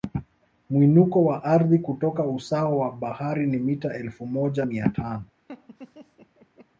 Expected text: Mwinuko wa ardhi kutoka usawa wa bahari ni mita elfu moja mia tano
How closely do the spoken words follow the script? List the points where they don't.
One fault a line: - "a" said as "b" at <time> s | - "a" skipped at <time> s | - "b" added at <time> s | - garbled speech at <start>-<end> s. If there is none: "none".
none